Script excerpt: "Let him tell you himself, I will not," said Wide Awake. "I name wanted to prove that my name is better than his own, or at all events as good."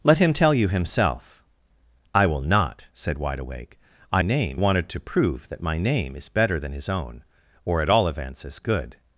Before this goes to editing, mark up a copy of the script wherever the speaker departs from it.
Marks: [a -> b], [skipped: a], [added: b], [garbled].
"Let him tell you himself, I will not," said Wide Awake. "I name wanted to prove that my name is better than his own, or at all events as good."